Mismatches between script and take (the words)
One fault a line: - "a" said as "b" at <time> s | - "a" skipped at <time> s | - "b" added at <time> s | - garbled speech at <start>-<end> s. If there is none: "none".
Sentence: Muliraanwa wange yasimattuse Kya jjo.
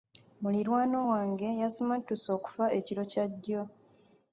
- "okufa ekiro" added at 2.4 s